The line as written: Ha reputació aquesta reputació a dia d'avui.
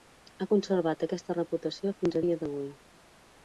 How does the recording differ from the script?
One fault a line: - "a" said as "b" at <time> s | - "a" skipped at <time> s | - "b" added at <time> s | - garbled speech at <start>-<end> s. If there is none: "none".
- "reputació" said as "conservat" at 0.5 s
- "fins" added at 2.0 s